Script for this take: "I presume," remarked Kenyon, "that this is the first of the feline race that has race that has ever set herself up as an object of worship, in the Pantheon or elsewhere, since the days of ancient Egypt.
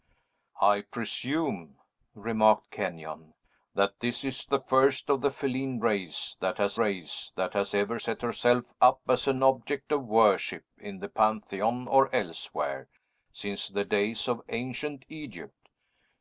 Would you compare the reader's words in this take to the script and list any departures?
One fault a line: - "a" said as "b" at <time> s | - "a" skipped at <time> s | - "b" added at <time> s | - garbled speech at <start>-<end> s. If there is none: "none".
none